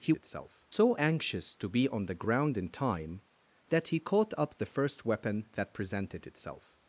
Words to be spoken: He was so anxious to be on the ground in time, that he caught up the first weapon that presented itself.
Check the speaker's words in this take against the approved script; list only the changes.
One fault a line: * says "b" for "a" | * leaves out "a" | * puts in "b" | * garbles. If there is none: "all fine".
* says "itself" for "was"